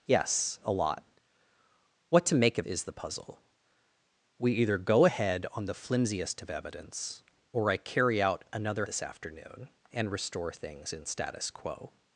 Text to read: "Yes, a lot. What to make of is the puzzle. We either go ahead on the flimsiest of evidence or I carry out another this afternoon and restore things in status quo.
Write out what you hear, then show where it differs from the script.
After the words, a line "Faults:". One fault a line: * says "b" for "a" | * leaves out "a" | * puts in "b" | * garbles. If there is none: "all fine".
"Yes, a lot. What to make of is the puzzle. We either go ahead on the flimsiest of evidence or I carry out another this afternoon and restore things in status quo.
Faults:
all fine